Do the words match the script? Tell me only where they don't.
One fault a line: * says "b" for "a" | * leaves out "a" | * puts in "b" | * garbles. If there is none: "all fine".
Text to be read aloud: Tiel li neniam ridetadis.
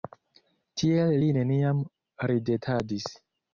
all fine